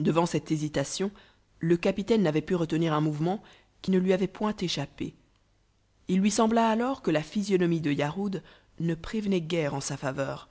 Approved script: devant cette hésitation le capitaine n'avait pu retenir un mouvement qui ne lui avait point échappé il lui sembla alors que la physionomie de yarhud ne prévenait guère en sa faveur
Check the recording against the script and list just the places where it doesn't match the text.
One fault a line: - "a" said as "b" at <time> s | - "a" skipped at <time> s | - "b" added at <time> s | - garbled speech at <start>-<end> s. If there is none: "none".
none